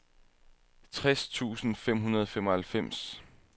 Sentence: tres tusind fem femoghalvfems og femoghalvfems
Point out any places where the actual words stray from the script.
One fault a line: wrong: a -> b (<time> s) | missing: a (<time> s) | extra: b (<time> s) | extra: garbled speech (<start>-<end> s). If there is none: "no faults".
wrong: femoghalvfems -> hundrede (2.0 s)